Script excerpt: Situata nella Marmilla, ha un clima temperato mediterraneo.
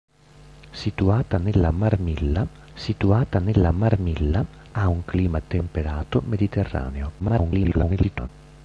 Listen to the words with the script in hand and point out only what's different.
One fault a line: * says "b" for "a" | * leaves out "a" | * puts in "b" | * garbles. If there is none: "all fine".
* puts in "situata nella Marmilla"
* garbles